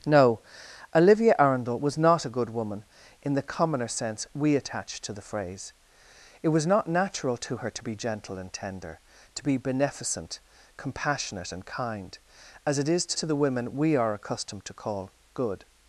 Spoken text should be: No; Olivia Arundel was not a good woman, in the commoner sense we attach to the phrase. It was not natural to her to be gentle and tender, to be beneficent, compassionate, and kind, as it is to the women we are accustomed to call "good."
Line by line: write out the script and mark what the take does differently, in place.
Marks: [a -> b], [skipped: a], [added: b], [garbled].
No; Olivia Arundel was not a good woman, in the commoner sense we attach to the phrase. It was not natural to her to be gentle and tender, to be beneficent, compassionate, and kind, as it is to [added: to] the women we are accustomed to call "good."